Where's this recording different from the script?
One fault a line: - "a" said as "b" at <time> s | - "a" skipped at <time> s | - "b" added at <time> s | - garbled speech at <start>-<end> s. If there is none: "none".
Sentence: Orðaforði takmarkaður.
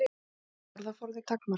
none